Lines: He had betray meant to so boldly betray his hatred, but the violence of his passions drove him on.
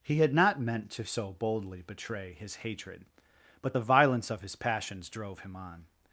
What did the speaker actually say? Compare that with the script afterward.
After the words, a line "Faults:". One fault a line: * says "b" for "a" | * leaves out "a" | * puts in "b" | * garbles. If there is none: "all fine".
He had not meant to so boldly betray his hatred, but the violence of his passions drove him on.
Faults:
* says "not" for "betray"